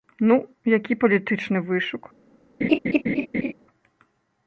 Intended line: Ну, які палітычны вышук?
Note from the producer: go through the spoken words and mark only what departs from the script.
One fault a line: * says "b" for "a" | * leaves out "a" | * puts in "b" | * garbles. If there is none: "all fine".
all fine